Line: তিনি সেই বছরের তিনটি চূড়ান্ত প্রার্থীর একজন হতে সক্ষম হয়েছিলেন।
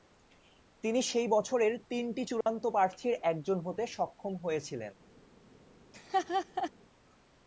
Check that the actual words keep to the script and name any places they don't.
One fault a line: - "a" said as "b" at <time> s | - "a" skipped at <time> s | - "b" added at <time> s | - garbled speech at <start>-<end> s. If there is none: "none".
none